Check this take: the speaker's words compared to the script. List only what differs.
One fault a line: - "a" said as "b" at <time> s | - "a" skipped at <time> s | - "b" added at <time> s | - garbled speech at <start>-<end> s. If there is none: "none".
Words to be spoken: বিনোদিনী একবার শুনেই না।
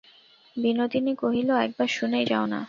- "কহিল" added at 1.1 s
- "যাও" added at 2.2 s